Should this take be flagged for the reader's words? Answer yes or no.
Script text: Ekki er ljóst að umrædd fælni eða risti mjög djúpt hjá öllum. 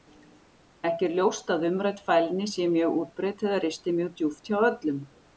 yes